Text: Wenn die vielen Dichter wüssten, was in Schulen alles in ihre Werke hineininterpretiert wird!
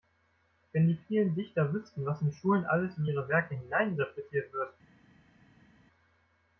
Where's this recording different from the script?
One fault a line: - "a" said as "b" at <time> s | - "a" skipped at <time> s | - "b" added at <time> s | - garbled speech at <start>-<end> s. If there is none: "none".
none